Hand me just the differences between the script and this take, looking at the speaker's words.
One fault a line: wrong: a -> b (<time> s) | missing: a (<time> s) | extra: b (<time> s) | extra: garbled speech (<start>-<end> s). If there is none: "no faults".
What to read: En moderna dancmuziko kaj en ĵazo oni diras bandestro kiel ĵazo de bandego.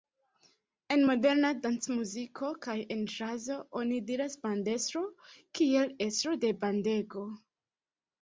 wrong: ĵazo -> estro (6.1 s)